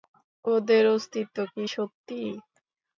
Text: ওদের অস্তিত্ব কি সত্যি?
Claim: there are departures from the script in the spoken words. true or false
false